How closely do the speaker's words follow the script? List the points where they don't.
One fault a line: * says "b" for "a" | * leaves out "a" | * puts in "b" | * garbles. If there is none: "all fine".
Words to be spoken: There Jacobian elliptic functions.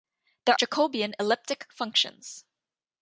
all fine